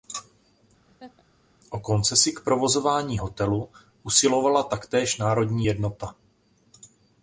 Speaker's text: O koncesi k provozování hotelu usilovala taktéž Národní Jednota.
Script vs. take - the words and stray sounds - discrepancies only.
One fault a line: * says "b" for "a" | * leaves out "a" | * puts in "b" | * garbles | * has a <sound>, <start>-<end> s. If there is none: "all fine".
* has a laugh, 0.9-1.2 s